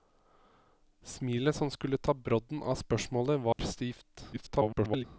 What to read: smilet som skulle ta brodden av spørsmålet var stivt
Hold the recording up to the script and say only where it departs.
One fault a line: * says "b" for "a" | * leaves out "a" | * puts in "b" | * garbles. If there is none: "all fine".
* garbles